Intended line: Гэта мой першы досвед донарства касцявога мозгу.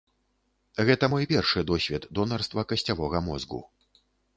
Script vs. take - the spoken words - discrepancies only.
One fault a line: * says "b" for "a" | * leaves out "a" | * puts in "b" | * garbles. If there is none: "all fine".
all fine